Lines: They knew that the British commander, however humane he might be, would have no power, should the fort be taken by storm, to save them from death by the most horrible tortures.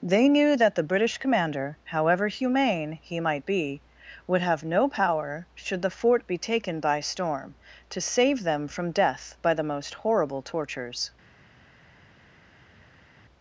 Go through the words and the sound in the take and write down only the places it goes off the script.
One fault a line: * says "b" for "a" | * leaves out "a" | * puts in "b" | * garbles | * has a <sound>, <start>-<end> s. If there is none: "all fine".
all fine